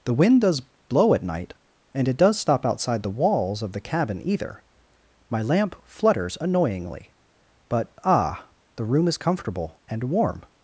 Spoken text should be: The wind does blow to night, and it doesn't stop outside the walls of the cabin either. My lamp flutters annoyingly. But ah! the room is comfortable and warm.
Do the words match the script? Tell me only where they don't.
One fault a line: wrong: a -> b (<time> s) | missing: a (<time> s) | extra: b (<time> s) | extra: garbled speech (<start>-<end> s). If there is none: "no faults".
wrong: to -> at (1.1 s)
wrong: doesn't -> does (2.2 s)